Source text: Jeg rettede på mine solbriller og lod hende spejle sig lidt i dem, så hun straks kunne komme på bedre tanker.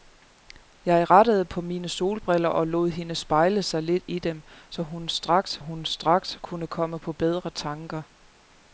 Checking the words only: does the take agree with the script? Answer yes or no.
no